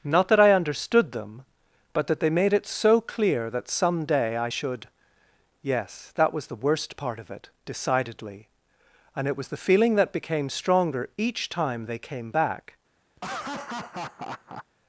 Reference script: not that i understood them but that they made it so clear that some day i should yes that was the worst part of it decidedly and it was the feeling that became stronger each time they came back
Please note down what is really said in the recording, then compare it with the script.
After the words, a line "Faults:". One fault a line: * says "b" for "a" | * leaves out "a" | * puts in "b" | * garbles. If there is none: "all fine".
not that i understood them but that they made it so clear that some day i should yes that was the worst part of it decidedly and it was the feeling that became stronger each time they came back
Faults:
all fine